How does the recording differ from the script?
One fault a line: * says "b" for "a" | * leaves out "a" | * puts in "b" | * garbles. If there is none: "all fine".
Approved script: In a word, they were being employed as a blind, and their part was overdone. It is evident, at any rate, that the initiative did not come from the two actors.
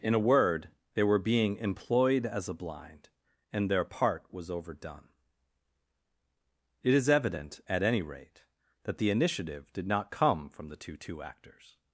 * puts in "two"